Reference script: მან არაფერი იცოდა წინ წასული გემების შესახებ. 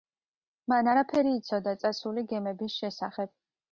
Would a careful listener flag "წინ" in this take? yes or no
yes